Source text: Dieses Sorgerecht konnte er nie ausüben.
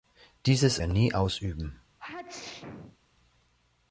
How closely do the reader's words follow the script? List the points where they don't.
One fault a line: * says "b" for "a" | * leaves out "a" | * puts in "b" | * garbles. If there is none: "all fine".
* leaves out "Sorgerecht konnte"